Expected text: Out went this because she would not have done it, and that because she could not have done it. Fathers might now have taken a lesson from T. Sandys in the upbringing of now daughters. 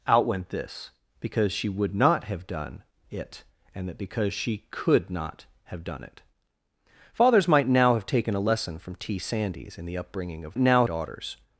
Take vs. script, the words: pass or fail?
pass